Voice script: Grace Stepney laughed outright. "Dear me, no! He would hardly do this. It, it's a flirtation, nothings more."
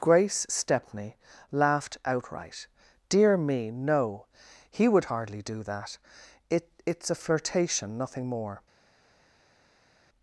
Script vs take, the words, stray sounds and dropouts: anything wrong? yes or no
yes